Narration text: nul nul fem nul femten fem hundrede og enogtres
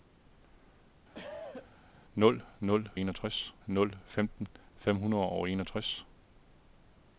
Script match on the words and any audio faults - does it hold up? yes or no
no